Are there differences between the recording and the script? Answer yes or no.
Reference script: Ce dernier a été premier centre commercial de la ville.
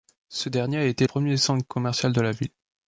no